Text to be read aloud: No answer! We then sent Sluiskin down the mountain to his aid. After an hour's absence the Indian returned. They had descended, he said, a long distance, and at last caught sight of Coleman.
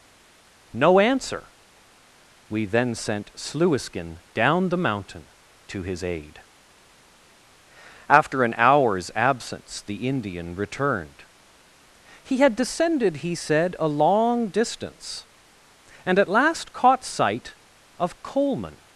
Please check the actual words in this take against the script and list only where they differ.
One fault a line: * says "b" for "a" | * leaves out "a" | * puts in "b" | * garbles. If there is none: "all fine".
* says "He" for "They"